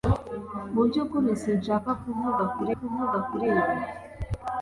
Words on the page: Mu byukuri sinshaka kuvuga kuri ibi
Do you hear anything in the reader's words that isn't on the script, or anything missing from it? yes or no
yes